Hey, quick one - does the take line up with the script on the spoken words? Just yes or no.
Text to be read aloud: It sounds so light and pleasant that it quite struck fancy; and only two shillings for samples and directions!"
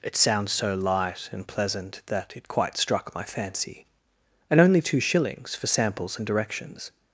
no